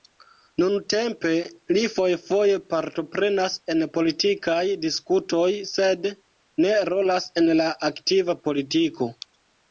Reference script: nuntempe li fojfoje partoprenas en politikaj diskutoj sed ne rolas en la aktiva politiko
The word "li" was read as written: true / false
true